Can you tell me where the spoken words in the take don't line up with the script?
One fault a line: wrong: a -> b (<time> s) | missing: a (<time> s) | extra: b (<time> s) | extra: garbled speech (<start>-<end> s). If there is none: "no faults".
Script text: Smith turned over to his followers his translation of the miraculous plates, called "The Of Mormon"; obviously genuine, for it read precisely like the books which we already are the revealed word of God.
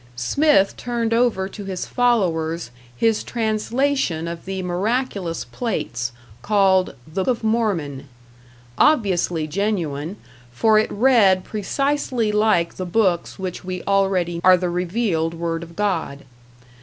no faults